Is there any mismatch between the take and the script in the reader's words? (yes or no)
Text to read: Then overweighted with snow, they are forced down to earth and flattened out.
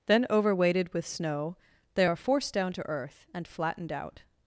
no